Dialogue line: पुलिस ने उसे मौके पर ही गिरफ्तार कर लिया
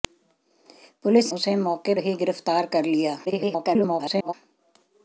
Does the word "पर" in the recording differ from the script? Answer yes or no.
yes